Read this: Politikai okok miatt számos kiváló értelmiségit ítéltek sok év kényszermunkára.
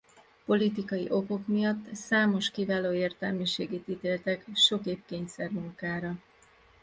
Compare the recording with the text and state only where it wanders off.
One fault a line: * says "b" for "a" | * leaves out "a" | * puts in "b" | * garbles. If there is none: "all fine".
all fine